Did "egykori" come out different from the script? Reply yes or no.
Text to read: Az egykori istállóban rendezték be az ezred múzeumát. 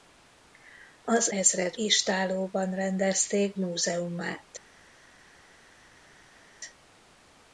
yes